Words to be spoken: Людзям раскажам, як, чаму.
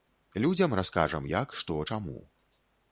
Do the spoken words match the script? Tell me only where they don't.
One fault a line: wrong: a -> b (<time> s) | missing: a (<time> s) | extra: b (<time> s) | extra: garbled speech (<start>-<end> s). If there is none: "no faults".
extra: што (1.6 s)